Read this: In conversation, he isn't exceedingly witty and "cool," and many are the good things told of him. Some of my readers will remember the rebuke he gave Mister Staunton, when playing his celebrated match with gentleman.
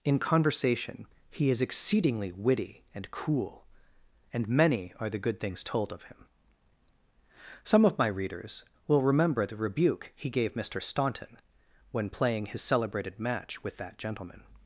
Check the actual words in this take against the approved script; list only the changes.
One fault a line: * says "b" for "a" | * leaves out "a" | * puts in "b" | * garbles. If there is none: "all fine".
* says "is" for "isn't"
* puts in "that"